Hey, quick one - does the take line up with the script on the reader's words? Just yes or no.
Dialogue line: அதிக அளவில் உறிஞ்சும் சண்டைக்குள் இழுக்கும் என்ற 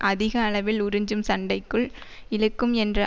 yes